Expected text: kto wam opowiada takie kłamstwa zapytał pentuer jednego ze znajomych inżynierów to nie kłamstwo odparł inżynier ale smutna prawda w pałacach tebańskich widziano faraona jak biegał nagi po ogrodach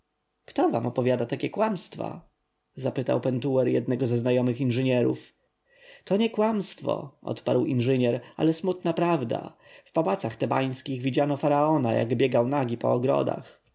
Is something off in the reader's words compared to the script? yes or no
no